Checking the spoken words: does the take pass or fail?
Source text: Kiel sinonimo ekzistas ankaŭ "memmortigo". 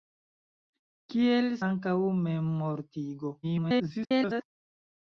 fail